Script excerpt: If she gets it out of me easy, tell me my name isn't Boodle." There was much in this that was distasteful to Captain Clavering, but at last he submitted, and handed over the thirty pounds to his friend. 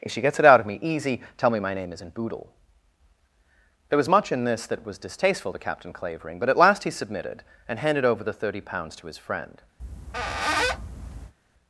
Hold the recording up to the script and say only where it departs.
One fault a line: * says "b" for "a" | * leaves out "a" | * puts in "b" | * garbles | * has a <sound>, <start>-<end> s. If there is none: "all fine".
* has a squeak, 9.8-11.3 s